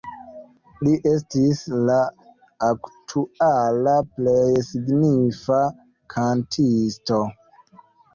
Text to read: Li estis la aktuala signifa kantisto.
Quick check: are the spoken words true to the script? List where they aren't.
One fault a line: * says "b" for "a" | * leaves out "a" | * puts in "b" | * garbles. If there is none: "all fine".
* puts in "plej"